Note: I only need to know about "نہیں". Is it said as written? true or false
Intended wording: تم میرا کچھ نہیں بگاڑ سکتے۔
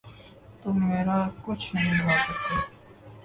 true